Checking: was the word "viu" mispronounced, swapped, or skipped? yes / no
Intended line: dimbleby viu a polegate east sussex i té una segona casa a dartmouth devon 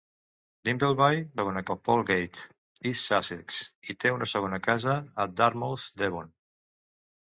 yes